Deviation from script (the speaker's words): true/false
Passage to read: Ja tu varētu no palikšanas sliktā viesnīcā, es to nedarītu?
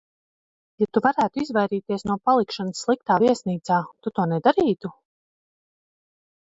true